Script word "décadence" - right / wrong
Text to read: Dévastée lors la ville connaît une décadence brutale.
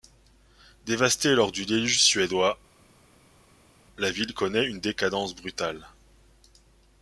right